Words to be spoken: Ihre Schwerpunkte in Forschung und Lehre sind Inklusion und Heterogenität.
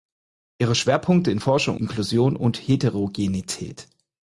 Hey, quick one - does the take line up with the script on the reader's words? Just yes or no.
no